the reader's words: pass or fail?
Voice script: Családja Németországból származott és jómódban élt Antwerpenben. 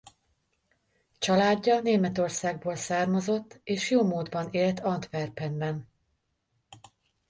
pass